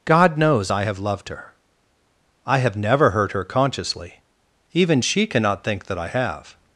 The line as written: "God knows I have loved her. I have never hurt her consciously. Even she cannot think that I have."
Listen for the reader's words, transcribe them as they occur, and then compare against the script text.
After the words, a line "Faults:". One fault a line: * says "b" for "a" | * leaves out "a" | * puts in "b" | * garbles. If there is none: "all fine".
"God knows I have loved her. I have never hurt her consciously. Even she cannot think that I have."
Faults:
all fine